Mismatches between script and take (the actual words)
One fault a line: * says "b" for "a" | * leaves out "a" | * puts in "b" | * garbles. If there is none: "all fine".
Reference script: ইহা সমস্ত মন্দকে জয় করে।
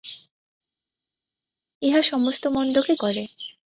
* leaves out "জয়"